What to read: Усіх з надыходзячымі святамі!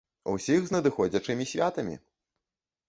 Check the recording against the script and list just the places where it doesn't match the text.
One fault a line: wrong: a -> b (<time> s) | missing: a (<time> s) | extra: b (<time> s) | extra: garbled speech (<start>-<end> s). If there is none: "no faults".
no faults